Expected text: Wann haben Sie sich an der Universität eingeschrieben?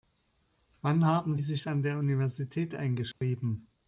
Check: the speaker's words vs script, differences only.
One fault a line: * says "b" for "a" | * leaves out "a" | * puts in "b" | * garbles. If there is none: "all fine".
* leaves out "Sie"